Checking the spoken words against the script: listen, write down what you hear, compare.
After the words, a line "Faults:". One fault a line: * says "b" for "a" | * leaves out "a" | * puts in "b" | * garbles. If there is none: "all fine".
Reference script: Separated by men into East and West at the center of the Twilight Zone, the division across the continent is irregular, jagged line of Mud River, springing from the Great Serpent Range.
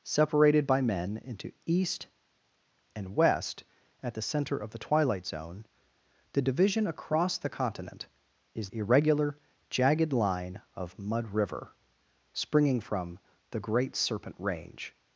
Separated by men into East and West at the center of the Twilight Zone, the division across the continent is irregular, jagged line of Mud River, springing from the Great Serpent Range.
Faults:
all fine